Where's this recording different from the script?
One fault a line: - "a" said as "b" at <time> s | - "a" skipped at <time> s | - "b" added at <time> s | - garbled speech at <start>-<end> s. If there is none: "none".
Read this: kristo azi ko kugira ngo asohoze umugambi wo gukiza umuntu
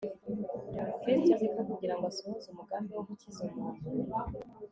none